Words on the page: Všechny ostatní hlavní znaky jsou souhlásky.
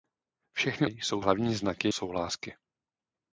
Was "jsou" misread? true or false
true